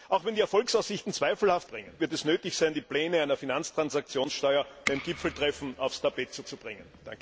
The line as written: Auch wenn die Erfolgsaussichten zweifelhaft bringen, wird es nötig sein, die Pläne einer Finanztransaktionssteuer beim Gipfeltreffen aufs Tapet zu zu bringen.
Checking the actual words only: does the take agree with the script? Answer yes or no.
yes